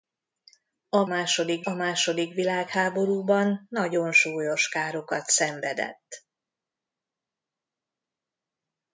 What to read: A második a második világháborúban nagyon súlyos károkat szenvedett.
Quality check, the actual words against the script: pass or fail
pass